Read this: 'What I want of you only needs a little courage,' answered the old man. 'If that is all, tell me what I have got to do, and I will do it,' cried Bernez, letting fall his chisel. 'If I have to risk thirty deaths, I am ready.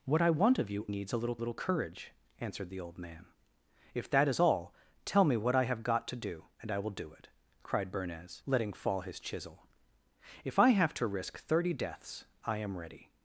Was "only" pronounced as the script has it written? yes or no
no